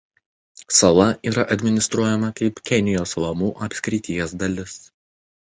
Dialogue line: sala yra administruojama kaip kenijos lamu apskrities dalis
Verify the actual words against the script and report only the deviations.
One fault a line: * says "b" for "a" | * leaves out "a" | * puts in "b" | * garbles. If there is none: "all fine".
all fine